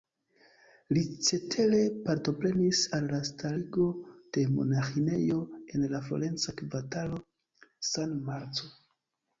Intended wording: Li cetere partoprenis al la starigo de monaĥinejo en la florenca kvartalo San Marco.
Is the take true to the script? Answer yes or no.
yes